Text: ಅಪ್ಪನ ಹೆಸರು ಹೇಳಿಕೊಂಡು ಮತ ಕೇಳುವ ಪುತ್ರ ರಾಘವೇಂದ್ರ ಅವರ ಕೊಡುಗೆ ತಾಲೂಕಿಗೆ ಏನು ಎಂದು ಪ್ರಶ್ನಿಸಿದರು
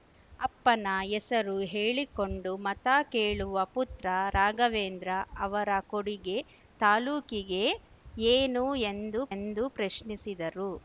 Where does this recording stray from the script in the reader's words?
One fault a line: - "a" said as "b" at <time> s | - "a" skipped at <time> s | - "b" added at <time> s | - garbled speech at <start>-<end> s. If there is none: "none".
- "ಎಂದು" added at 9.3 s